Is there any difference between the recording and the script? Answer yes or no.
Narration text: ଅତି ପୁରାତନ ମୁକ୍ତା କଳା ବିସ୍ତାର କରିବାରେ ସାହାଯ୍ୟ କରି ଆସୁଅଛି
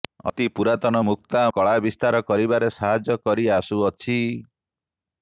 no